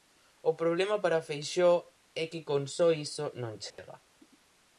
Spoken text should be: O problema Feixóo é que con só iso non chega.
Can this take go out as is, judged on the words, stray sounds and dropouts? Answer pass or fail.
fail